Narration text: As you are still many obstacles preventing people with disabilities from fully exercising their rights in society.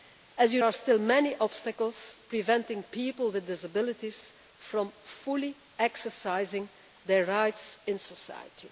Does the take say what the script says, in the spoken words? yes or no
yes